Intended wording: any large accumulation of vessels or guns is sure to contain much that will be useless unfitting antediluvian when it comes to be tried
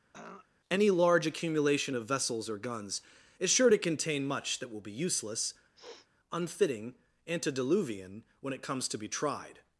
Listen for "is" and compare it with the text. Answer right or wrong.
right